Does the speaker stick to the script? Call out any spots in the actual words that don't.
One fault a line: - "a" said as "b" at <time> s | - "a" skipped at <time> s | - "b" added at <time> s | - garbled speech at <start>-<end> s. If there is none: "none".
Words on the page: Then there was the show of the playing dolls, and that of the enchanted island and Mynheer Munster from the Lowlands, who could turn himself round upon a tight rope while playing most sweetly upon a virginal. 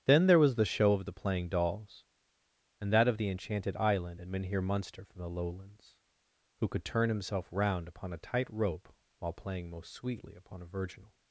none